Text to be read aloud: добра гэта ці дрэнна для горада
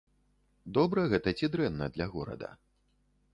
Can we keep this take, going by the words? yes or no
yes